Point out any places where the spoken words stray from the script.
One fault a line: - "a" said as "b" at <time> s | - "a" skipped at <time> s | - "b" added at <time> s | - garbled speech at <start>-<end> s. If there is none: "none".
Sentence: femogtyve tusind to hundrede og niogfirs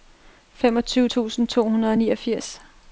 none